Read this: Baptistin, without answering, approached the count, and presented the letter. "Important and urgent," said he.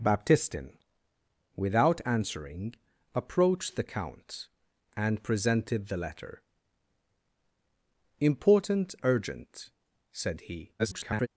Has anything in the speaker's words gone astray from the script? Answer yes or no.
yes